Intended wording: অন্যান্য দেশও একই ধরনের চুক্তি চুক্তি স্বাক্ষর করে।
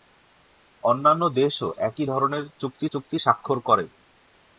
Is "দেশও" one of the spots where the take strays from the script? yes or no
no